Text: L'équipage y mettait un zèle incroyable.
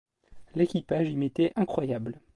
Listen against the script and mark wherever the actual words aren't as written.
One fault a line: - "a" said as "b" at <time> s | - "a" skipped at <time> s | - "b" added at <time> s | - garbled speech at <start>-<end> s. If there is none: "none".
- "un zèle" skipped at 1.5 s